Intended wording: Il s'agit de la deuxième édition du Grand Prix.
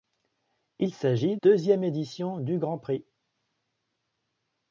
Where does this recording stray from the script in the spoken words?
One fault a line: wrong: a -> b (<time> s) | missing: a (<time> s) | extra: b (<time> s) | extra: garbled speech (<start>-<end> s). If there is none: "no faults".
missing: de la (1.4 s)